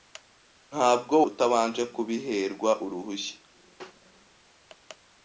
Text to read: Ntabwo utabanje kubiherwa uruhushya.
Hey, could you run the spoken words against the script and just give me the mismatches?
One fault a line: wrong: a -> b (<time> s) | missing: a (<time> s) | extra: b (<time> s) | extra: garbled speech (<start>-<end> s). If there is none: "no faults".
no faults